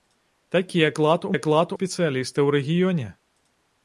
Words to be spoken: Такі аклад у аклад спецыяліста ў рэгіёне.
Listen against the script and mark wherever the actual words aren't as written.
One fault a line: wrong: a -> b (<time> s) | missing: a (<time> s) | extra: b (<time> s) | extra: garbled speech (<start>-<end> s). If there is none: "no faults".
no faults